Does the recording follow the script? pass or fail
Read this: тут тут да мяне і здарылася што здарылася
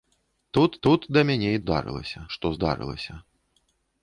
pass